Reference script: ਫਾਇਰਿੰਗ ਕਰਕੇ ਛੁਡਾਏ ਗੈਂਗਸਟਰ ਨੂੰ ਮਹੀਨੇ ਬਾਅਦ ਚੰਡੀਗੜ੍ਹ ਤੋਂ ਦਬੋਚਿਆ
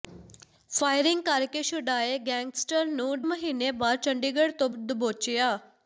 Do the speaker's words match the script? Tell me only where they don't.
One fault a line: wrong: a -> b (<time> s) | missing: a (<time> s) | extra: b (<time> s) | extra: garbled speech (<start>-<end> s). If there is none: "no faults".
no faults